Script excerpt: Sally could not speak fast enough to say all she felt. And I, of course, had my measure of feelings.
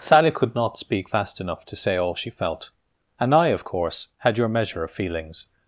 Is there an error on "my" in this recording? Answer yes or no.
yes